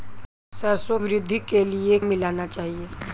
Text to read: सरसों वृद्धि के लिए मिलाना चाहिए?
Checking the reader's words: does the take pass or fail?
pass